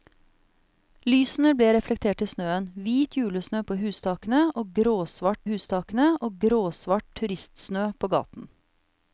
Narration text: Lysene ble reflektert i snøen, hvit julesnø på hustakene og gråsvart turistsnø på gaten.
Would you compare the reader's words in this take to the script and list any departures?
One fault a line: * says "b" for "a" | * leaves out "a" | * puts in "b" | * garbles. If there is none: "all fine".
* puts in "hustakene og gråsvart"